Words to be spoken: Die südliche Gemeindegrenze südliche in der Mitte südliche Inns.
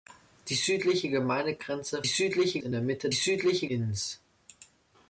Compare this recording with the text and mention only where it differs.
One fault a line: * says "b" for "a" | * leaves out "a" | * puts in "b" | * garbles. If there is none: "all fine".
all fine